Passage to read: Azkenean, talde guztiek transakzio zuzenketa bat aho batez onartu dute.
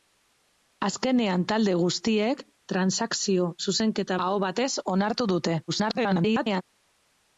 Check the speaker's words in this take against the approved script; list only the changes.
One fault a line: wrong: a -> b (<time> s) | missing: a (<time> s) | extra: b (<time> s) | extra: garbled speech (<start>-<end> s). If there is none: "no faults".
missing: bat (4.2 s)
extra: garbled speech (5.7-6.6 s)